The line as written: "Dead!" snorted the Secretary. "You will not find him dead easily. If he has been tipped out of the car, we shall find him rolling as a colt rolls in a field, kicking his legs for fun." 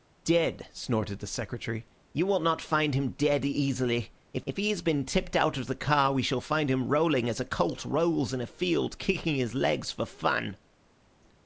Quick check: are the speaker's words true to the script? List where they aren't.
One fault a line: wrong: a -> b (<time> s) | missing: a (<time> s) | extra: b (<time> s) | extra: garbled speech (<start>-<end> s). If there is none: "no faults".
extra: if (4.5 s)